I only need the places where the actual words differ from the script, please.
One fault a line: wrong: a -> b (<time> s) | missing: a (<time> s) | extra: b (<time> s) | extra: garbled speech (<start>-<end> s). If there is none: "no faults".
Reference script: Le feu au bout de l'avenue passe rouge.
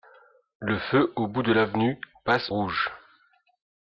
no faults